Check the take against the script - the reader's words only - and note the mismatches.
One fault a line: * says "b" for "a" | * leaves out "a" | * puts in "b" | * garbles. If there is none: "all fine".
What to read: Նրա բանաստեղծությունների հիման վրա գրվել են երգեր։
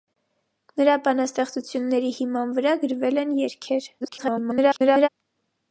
* garbles